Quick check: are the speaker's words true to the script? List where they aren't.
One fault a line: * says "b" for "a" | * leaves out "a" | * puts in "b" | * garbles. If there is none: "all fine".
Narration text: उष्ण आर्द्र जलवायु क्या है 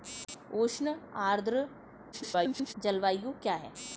* garbles